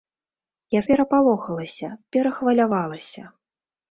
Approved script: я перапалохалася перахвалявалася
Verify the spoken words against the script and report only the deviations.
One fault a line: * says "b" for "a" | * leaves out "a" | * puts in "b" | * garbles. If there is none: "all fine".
all fine